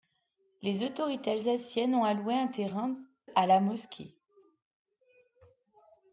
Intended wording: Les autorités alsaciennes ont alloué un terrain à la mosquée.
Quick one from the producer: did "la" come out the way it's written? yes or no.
yes